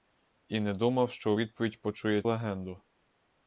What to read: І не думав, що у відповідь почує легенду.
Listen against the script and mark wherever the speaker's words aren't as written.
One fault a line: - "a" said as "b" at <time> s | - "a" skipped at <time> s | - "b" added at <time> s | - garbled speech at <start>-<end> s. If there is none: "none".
none